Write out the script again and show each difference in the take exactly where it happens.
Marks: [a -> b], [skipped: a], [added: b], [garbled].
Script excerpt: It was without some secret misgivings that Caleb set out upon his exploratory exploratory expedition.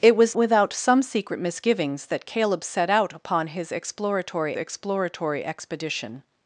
It was without some secret misgivings that Caleb set out upon his exploratory exploratory expedition.